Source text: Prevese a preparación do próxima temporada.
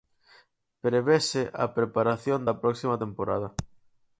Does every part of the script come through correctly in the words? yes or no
no